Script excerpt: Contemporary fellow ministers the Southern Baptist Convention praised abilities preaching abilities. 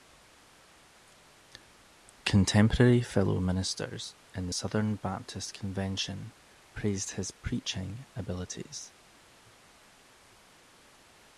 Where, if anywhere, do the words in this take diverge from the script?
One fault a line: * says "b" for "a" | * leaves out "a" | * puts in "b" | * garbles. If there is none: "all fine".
* puts in "in"
* says "his" for "abilities"